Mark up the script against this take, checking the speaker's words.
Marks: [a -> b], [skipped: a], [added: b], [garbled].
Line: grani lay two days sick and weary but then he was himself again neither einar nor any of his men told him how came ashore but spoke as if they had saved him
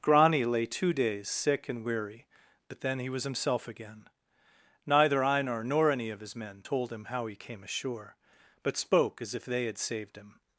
grani lay two days sick and weary but then he was himself again neither einar nor any of his men told him how [added: he] came ashore but spoke as if they had saved him